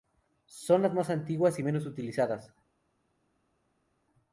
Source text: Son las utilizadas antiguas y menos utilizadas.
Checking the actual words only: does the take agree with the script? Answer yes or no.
no